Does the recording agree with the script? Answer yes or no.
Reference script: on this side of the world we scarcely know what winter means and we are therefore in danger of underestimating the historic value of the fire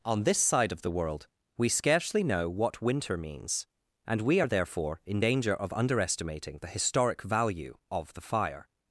yes